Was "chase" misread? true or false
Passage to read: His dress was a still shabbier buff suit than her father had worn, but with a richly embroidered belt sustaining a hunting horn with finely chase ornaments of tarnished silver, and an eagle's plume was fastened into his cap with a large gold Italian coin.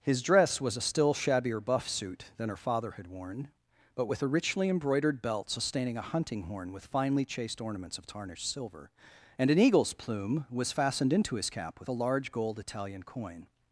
true